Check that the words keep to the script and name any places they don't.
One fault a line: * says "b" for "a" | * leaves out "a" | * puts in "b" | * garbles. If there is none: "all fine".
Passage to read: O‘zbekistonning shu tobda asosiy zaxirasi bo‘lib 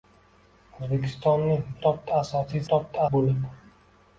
* leaves out "shu"
* says "tobda" for "zaxirasi"